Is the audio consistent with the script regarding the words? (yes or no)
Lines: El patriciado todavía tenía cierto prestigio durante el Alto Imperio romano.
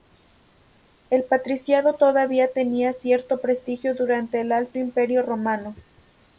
yes